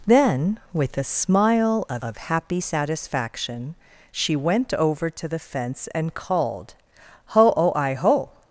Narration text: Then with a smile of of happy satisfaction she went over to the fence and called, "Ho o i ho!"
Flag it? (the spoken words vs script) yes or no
no